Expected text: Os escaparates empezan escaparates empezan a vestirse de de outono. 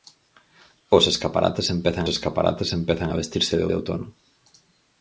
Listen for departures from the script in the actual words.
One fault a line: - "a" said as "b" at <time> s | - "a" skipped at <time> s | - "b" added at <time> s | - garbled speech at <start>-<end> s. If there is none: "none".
none